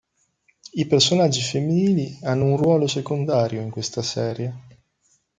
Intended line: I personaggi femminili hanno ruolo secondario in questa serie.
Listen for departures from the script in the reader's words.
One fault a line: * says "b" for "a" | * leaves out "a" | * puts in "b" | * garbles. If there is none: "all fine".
* puts in "un"